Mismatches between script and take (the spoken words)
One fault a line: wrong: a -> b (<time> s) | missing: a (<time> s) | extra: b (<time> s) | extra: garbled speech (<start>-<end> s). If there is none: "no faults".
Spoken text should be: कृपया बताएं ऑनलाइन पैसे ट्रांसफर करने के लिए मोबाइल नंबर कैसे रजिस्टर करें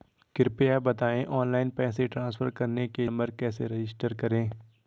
missing: लिए मोबाइल (3.1 s)